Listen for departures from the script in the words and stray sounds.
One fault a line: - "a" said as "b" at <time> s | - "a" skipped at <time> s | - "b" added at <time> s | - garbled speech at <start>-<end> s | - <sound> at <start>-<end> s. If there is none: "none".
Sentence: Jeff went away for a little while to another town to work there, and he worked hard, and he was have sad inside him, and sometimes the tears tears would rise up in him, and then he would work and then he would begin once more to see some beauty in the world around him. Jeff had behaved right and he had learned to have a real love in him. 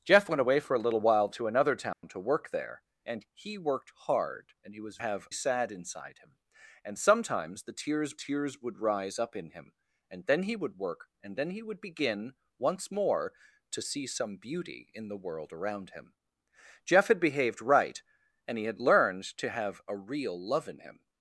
- dropout at 1.9-2.0 s